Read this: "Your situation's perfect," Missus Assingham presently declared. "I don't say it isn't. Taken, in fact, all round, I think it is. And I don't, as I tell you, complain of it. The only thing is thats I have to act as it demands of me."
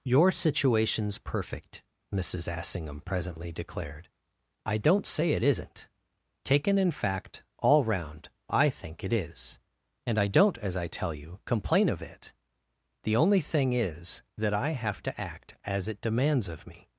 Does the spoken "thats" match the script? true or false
false